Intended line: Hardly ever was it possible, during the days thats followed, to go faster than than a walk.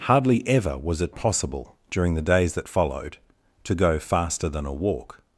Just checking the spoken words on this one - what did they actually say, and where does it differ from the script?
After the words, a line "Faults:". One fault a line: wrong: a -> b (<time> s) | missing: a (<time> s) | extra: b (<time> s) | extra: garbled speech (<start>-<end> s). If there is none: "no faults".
Hardly ever was it possible, during the days that followed, to go faster than a walk.
Faults:
wrong: thats -> that (2.5 s)
missing: than (4.6 s)